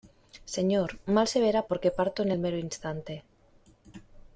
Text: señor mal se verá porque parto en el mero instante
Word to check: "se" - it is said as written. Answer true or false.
true